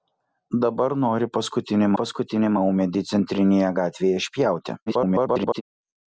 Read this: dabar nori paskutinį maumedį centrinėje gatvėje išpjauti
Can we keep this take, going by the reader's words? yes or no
no